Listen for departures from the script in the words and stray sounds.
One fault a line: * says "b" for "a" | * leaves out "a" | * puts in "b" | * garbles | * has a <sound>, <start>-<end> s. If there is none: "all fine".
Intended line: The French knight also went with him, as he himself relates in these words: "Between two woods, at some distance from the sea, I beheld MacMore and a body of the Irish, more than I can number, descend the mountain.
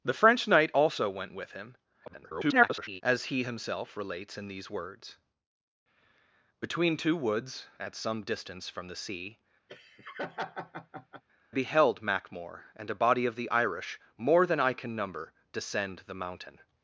* garbles
* leaves out "I"
* has a laugh, 9.7-11.2 s